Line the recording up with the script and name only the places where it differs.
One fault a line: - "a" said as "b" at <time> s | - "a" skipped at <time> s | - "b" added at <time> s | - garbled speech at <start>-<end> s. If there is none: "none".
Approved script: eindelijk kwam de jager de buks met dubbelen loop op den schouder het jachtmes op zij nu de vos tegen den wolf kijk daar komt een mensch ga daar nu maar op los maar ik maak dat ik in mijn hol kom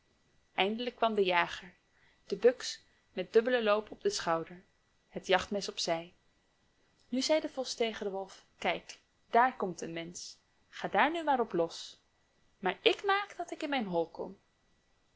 - "zei" added at 7.2 s